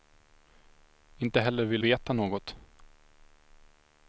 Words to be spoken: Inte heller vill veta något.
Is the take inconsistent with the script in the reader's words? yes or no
no